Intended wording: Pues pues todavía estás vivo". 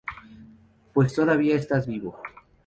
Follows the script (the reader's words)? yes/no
no